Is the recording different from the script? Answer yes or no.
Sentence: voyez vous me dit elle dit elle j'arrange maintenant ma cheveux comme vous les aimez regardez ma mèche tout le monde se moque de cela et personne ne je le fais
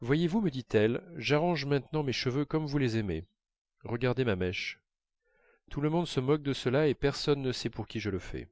yes